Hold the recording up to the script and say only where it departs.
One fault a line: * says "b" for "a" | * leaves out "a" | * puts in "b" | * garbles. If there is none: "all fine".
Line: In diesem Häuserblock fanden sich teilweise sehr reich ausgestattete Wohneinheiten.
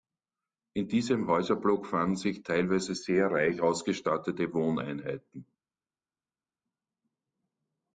all fine